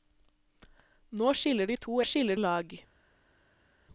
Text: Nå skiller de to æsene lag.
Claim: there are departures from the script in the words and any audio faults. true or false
true